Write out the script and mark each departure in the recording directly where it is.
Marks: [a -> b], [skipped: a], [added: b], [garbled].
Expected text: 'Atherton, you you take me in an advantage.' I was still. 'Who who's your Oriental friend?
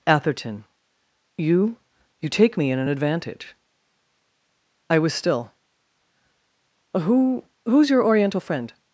'Atherton, you you take me in an advantage.' I was still. 'Who who's your Oriental friend?